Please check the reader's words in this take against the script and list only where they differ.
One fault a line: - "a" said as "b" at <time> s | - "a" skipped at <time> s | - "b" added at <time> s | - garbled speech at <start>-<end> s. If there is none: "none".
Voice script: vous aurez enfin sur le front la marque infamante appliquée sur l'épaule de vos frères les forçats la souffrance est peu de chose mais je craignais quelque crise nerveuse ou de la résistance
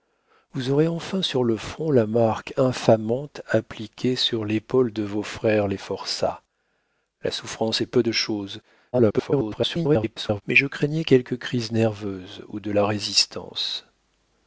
- garbled speech at 8.9-10.4 s